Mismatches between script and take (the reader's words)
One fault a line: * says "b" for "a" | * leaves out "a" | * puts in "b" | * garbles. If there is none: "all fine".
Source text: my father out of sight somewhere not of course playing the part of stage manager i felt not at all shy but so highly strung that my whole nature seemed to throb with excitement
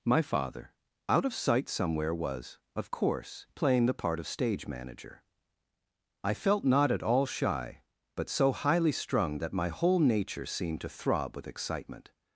* says "was" for "not"